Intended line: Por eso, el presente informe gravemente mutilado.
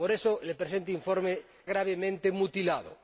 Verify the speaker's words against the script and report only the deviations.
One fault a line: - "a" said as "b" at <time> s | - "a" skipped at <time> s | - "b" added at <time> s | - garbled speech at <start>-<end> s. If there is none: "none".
none